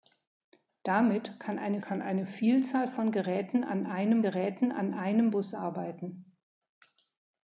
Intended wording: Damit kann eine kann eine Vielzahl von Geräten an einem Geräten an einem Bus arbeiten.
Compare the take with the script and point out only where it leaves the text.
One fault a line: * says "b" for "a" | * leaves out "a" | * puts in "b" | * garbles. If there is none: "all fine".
all fine